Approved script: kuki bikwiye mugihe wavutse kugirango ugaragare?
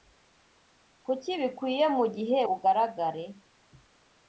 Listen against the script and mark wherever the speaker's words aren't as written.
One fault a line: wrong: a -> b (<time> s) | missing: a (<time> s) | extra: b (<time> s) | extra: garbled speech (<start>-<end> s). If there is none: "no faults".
missing: wavutse kugirango (2.4 s)